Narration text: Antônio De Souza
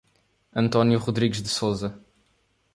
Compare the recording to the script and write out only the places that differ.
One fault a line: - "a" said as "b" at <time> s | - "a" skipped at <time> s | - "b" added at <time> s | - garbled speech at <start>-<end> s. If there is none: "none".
- "Rodrigues" added at 1.0 s